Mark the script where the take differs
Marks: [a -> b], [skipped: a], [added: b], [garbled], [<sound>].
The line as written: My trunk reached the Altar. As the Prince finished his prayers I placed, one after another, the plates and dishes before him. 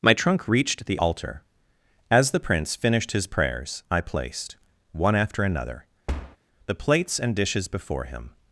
My trunk reached the Altar. As the Prince finished his prayers I placed, one after another, [thud] the plates and dishes before him.